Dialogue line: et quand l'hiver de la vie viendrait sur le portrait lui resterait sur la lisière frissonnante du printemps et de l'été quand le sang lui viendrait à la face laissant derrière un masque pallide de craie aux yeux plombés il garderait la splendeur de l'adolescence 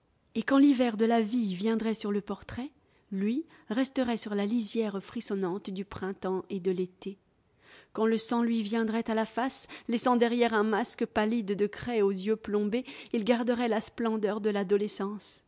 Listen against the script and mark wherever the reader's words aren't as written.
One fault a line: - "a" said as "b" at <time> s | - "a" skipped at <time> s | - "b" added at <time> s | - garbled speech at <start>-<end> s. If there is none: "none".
none